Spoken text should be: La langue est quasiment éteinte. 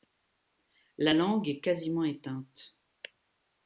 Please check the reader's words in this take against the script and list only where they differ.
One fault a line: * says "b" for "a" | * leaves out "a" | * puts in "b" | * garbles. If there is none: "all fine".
all fine